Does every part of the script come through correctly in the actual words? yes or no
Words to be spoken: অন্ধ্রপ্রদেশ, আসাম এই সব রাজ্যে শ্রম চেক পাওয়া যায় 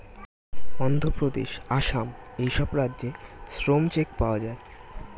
yes